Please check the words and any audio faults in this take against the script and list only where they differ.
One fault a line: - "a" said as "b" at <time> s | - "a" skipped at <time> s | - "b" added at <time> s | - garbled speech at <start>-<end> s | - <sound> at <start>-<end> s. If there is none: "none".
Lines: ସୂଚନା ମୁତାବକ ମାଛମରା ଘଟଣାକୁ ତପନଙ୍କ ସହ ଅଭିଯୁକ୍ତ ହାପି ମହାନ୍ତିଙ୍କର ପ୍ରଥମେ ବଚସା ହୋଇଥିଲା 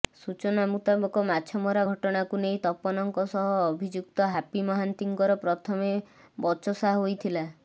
- "ନେଇ" added at 2.4 s